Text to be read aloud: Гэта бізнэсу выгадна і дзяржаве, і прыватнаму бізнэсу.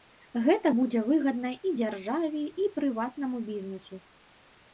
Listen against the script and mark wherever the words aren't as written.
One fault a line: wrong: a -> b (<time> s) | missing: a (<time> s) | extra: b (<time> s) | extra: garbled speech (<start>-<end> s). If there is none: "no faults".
wrong: бізнэсу -> будзе (0.8 s)